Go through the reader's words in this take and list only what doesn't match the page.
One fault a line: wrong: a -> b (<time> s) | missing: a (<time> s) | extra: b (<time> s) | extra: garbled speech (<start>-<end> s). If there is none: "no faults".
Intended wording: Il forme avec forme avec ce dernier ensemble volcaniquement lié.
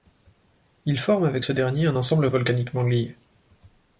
missing: forme avec (1.4 s)
extra: un (1.9 s)